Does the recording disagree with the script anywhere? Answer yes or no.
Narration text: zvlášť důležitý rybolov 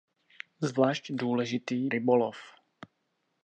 no